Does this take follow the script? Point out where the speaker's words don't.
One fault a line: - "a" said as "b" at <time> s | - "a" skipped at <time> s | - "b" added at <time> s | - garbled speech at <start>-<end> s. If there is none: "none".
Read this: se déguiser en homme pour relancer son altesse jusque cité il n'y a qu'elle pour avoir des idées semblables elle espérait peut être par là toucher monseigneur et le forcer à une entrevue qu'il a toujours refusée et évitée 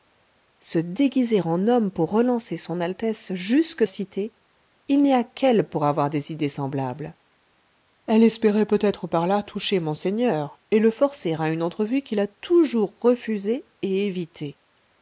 none